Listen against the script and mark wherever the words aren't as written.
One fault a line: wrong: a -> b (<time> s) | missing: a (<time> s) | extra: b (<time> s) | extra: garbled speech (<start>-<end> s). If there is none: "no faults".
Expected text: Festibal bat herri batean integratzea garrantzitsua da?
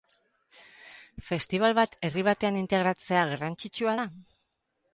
no faults